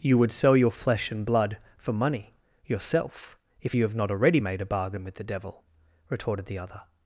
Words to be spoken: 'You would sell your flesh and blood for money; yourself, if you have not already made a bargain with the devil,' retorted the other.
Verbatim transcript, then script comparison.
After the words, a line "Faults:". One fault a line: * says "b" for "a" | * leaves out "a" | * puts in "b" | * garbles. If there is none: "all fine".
'You would sell your flesh and blood for money; yourself, if you have not already made a bargain with the devil,' retorted the other.
Faults:
all fine